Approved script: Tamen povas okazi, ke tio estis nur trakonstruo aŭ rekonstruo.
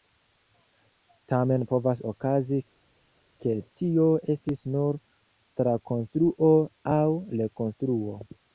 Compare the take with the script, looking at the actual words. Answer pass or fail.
pass